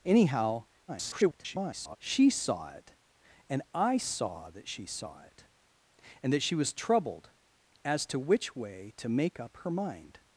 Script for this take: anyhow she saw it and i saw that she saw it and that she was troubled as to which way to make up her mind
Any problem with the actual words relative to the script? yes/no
yes